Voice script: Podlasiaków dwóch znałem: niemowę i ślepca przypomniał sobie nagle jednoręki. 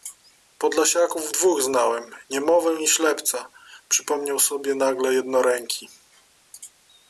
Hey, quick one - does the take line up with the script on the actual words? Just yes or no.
yes